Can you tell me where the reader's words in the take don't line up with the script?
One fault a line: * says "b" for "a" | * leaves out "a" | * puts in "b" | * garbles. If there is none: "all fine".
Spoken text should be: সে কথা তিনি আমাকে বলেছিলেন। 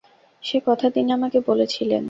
all fine